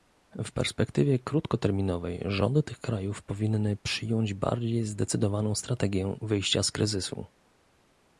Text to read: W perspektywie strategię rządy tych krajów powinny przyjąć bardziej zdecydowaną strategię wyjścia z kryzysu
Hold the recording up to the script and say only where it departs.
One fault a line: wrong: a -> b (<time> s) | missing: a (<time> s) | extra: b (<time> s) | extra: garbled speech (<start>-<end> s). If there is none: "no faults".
wrong: strategię -> krótkoterminowej (1.2 s)